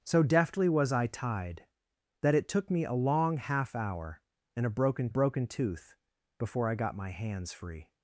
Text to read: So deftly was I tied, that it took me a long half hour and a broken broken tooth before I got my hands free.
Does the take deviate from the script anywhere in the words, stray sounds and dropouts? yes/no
no